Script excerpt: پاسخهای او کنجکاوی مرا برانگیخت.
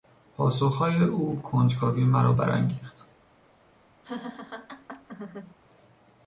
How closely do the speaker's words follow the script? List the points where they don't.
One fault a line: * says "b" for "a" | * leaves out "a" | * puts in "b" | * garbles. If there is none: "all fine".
all fine